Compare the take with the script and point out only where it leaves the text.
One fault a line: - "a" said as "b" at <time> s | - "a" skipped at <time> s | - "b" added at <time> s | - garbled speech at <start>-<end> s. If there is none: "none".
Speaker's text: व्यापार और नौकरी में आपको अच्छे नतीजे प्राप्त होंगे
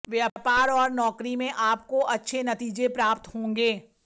none